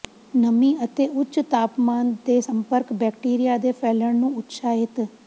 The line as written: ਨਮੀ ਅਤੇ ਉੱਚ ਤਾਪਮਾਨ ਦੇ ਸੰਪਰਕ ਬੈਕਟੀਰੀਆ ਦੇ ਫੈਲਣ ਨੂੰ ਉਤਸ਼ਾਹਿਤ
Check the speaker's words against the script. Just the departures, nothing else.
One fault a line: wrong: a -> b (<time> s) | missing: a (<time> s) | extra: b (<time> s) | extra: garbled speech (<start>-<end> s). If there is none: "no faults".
no faults